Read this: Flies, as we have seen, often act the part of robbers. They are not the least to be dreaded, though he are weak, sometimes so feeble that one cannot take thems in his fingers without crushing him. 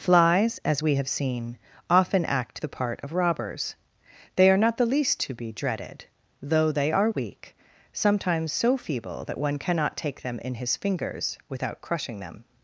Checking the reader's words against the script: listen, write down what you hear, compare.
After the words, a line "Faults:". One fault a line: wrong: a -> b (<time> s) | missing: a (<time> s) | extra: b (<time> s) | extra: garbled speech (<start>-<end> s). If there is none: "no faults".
Flies, as we have seen, often act the part of robbers. They are not the least to be dreaded, though they are weak, sometimes so feeble that one cannot take them in his fingers without crushing them.
Faults:
wrong: he -> they (6.7 s)
wrong: thems -> them (10.2 s)
wrong: him -> them (12.2 s)